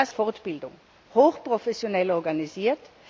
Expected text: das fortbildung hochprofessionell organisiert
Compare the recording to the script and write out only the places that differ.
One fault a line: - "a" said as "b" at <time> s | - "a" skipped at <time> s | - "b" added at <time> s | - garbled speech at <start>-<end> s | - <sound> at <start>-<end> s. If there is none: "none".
none